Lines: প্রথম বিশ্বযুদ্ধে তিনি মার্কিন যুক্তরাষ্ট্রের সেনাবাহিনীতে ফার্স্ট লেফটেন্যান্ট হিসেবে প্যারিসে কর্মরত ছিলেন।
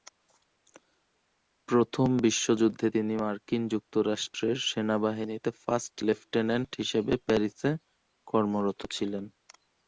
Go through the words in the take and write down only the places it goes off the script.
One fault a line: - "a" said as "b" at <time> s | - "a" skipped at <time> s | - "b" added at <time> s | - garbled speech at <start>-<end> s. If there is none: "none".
none